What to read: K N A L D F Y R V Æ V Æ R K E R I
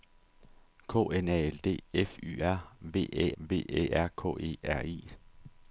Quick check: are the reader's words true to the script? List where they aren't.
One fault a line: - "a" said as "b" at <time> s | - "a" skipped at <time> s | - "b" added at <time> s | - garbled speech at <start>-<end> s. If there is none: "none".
none